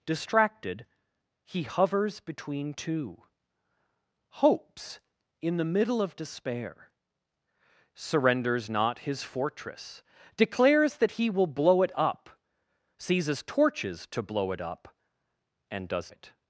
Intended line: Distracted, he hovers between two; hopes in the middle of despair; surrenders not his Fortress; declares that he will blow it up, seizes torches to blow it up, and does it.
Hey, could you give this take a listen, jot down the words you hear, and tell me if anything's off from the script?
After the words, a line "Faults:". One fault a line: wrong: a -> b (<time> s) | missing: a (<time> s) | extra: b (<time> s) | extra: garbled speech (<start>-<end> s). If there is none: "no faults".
Distracted, he hovers between two; hopes in the middle of despair; surrenders not his Fortress; declares that he will blow it up, seizes torches to blow it up, and does it.
Faults:
no faults